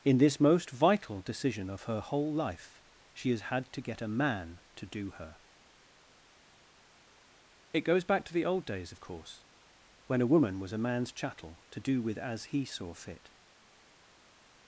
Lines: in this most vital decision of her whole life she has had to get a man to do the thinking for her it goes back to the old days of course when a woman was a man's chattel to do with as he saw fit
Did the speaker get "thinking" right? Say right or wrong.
wrong